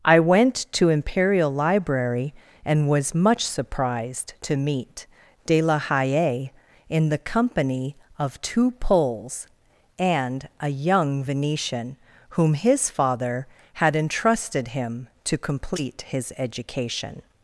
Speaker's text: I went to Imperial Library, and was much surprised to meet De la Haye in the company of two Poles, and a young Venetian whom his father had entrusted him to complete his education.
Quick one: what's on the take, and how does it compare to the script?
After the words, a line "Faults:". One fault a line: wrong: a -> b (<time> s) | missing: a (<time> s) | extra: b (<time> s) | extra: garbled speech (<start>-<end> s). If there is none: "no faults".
I went to Imperial Library, and was much surprised to meet De la Haye in the company of two Poles, and a young Venetian whom his father had entrusted him to complete his education.
Faults:
no faults